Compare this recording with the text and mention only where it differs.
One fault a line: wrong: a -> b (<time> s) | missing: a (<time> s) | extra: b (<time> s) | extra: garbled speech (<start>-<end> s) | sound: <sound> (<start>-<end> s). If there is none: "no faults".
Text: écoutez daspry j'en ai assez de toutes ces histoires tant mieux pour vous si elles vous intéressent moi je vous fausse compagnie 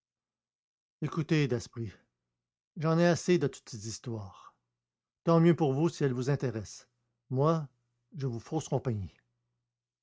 no faults